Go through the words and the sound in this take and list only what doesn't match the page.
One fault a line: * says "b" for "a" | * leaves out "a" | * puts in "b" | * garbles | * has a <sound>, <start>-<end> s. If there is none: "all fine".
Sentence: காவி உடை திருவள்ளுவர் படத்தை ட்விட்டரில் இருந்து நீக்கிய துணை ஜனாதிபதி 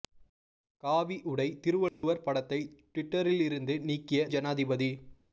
* has a dropout, 1.9-2.0 s
* leaves out "துணை"